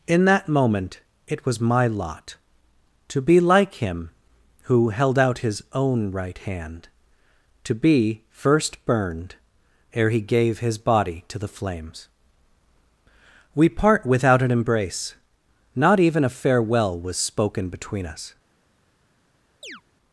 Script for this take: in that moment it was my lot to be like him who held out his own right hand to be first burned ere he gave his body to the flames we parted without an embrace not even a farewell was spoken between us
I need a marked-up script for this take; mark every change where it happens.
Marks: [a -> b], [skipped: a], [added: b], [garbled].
in that moment it was my lot to be like him who held out his own right hand to be first burned ere he gave his body to the flames we [parted -> part] without an embrace not even a farewell was spoken between us